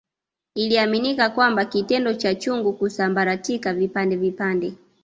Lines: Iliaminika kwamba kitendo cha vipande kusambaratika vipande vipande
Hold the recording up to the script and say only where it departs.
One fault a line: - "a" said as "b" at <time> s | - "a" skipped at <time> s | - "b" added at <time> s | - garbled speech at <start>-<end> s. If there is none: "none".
- "vipande" said as "chungu" at 2.4 s